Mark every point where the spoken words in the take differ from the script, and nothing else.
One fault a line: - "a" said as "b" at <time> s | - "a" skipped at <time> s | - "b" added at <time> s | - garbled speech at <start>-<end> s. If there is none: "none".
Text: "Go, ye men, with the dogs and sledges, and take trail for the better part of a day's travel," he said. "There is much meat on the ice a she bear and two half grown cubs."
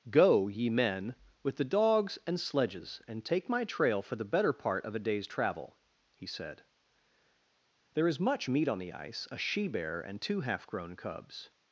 - "my" added at 3.5 s